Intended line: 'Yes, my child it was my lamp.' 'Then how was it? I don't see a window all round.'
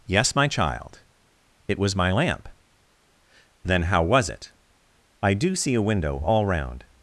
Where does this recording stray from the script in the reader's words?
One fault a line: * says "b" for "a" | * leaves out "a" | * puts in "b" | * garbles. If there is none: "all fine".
* says "do" for "don't"